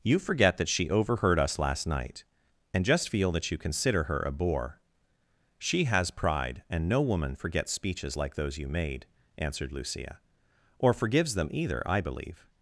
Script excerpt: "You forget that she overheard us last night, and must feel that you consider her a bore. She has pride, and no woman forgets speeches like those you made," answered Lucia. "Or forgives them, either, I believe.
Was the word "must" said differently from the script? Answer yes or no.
yes